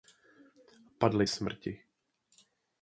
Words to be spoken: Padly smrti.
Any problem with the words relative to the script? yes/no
no